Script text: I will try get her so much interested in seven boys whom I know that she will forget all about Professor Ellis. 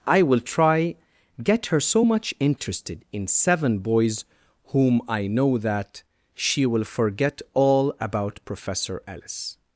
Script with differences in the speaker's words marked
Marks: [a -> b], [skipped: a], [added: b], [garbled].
I will try get her so much interested in seven boys whom I know that she will forget all about Professor Ellis.